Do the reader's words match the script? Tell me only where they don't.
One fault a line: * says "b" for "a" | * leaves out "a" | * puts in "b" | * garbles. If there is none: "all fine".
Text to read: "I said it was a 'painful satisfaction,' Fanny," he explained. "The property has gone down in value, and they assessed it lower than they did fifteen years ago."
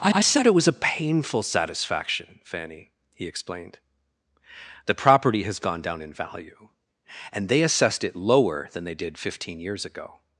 * puts in "I"